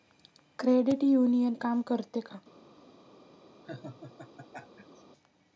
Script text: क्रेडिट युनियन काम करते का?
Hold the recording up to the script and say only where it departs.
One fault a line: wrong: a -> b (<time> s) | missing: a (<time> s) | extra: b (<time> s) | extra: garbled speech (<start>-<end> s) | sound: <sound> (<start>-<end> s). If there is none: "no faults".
sound: laugh (3.6-5.0 s)